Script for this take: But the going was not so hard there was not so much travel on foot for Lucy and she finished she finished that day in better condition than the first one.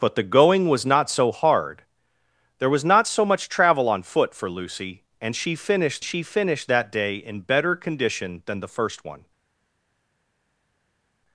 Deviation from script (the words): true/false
false